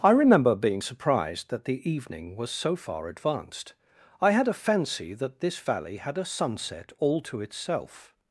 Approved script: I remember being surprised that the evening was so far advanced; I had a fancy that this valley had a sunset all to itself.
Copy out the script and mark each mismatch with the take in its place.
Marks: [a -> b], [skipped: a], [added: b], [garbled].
I remember being surprised that the evening was so far advanced; I had a fancy that this valley had a sunset all to itself.